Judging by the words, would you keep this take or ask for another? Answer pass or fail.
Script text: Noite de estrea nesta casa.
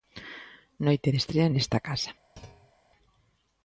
pass